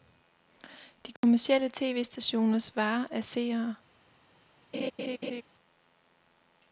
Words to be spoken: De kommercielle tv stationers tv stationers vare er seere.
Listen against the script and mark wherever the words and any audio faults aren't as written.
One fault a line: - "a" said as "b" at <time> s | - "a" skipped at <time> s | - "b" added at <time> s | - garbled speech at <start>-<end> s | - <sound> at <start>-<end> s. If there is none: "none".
- dropout at 1.2-1.2 s
- "tv stationers" skipped at 2.8 s
- laugh at 4.7-5.4 s